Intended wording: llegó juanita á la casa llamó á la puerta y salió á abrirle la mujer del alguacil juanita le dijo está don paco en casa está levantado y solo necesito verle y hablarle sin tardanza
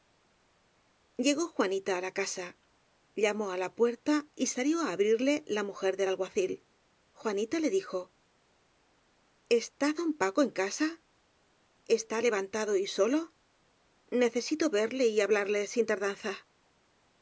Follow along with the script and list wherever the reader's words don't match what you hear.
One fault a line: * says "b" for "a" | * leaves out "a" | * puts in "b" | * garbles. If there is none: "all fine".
all fine